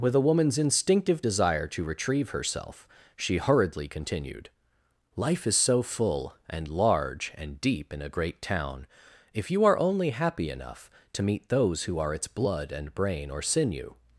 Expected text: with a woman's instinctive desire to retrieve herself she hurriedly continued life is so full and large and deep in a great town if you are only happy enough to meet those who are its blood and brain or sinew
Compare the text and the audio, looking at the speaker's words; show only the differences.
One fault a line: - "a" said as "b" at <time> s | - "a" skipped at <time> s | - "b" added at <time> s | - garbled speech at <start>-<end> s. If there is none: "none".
none